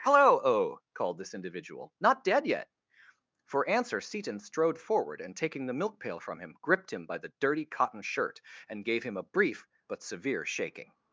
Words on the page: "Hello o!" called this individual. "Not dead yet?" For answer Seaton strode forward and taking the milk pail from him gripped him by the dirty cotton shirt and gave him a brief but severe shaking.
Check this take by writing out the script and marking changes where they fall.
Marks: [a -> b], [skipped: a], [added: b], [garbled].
"Hello o!" called this individual. "Not dead yet?" For answer Seaton strode forward and taking the milk pail from him gripped him by the dirty cotton shirt and gave him a brief but severe shaking.